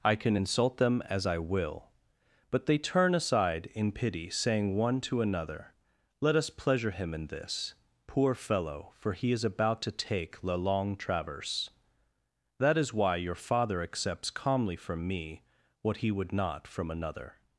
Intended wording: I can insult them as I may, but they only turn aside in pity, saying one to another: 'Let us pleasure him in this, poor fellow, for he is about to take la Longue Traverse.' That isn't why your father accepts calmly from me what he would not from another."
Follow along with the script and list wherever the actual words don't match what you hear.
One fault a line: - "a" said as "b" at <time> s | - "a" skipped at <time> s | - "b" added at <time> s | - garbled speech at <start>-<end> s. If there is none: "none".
- "may" said as "will" at 1.4 s
- "only" skipped at 2.8 s
- "isn't" said as "is" at 12.8 s